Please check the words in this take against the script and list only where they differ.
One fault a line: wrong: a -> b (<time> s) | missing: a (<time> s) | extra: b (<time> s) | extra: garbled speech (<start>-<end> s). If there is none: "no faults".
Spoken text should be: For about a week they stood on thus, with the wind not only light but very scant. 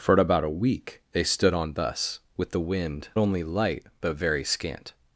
missing: not (3.1 s)